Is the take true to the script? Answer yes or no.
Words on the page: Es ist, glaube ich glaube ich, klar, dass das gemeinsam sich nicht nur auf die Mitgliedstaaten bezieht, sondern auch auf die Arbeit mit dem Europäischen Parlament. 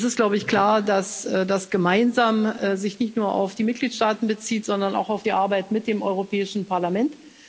no